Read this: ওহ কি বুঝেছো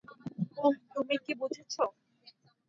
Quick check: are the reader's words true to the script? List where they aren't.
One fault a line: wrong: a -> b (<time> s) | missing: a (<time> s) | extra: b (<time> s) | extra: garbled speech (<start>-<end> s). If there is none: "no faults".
extra: তুমি (0.9 s)